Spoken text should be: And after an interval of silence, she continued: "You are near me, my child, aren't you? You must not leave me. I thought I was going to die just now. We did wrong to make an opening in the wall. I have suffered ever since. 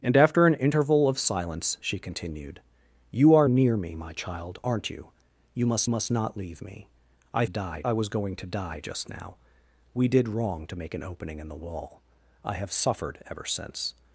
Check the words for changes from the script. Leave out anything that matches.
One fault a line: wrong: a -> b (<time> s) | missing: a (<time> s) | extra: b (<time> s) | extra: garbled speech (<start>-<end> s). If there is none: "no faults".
extra: must (5.9 s)
wrong: thought -> die (7.5 s)